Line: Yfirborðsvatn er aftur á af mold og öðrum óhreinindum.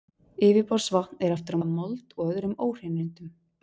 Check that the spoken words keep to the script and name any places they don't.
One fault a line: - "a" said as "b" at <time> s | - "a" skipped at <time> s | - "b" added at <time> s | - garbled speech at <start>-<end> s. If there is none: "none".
none